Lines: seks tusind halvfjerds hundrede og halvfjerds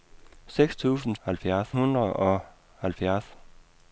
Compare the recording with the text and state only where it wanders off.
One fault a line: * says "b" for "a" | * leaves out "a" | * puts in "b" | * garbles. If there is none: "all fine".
all fine